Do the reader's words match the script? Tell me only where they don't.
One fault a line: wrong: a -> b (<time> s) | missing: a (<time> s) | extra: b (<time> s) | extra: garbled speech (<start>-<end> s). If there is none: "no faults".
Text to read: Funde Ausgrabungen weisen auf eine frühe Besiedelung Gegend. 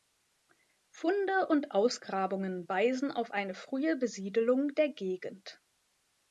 extra: und (1.5 s)
extra: der (4.7 s)